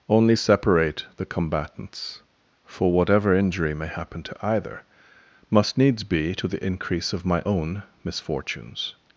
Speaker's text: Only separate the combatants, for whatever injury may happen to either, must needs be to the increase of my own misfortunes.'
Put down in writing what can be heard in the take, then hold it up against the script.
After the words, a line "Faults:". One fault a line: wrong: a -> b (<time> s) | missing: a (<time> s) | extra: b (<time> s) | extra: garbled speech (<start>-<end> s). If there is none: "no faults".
Only separate the combatants, for whatever injury may happen to either, must needs be to the increase of my own misfortunes.'
Faults:
no faults